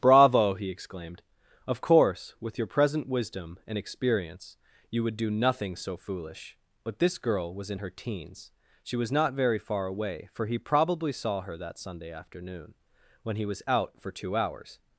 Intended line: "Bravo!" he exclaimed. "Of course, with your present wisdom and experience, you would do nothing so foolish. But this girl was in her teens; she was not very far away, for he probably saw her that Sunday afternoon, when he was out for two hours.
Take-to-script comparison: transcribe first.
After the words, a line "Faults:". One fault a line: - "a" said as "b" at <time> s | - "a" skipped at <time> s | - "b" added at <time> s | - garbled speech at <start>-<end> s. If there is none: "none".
"Bravo!" he exclaimed. "Of course, with your present wisdom and experience, you would do nothing so foolish. But this girl was in her teens; she was not very far away, for he probably saw her that Sunday afternoon, when he was out for two hours.
Faults:
none